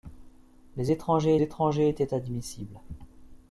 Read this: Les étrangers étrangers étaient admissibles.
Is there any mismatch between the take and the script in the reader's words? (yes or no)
no